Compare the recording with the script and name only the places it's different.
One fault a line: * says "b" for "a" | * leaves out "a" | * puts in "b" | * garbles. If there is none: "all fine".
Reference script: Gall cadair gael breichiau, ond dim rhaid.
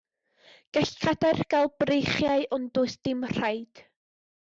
* puts in "does"